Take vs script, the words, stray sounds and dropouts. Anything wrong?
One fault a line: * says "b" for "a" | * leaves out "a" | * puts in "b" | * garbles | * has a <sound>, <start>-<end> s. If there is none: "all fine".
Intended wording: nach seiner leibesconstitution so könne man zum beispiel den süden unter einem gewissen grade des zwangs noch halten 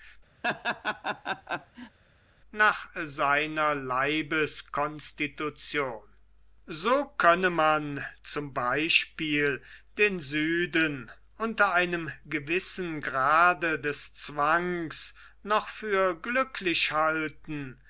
* has a laugh, 0.4-2.0 s
* puts in "für glücklich"